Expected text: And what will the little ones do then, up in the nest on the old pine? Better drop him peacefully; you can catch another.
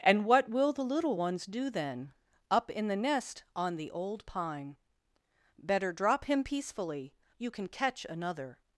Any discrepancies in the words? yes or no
no